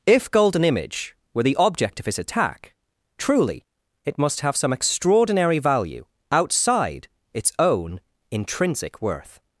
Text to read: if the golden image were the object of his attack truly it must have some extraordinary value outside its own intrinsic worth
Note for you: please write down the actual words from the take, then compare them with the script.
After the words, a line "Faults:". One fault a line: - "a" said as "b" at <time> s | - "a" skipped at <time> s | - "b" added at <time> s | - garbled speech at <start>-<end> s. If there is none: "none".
if golden image were the object of his attack truly it must have some extraordinary value outside its own intrinsic worth
Faults:
- "the" skipped at 0.3 s